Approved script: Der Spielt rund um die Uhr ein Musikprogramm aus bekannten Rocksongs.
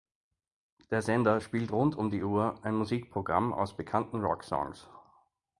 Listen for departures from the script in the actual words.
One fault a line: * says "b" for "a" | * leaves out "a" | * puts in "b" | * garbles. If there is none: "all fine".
* puts in "Sender"